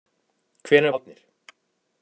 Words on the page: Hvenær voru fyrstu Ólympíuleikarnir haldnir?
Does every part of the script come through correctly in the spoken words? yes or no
no